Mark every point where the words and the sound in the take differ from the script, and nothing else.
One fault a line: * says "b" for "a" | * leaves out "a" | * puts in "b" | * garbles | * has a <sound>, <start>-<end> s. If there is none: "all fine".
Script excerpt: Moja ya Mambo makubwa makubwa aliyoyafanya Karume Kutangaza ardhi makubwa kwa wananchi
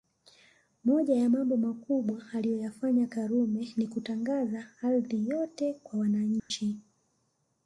* leaves out "makubwa"
* puts in "Ni"
* says "yote" for "makubwa"
* has a dropout, 6.4-6.5 s